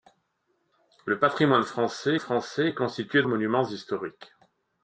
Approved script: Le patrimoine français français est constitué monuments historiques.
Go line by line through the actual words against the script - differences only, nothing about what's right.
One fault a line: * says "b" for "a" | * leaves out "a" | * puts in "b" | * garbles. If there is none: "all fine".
all fine